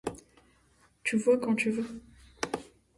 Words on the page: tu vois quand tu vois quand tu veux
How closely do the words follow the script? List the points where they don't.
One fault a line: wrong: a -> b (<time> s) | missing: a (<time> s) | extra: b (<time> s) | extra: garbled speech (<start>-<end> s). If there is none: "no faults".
missing: vois quand tu (1.7 s)